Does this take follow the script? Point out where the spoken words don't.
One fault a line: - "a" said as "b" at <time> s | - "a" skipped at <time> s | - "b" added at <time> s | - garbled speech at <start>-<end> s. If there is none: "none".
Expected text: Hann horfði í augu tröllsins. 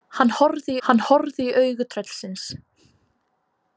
- "hann horfði" added at 0.9 s